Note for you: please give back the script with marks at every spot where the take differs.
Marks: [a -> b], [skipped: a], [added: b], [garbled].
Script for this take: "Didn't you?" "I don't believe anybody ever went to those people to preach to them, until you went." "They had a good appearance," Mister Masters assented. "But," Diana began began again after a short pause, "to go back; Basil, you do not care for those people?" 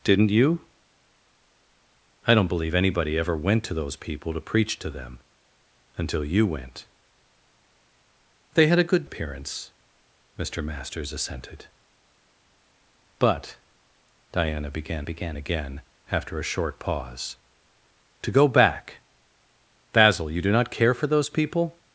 "Didn't you?" "I don't believe anybody ever went to those people to preach to them, until you went." "They had a good appearance," Mister Masters assented. "But," Diana began began again after a short pause, "to go back; Basil, you do not care for those people?"